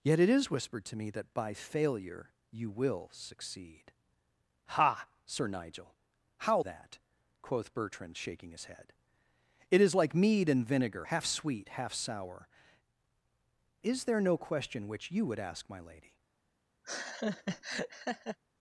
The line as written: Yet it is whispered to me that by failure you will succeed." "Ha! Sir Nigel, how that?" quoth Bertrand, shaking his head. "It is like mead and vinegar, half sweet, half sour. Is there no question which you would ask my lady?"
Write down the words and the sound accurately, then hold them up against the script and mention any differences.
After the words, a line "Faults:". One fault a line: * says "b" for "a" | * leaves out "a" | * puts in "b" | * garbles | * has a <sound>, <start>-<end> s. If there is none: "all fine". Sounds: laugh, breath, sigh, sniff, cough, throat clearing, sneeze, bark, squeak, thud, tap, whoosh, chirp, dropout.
Yet it is whispered to me that by failure you will succeed." "Ha! Sir Nigel, how that?" quoth Bertrand, shaking his head. "It is like mead and vinegar, half sweet, half sour. Is there no question which you would ask my lady?"
Faults:
* has a laugh, 16.8-18.4 s